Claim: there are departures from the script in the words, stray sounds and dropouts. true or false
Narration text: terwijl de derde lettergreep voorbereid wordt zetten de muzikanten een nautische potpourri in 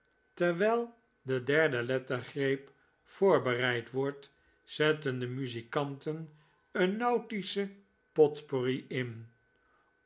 false